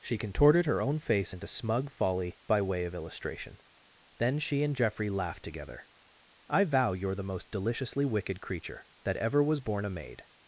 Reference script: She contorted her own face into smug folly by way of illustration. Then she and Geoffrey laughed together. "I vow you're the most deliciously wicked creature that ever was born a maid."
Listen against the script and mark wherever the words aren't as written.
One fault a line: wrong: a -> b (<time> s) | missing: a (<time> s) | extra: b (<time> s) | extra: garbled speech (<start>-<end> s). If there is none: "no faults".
no faults